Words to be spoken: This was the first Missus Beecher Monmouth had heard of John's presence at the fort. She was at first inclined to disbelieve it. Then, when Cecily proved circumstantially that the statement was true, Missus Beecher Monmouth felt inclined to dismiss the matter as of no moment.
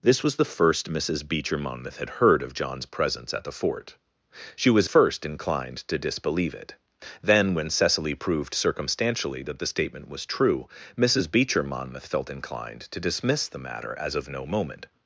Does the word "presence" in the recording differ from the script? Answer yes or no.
no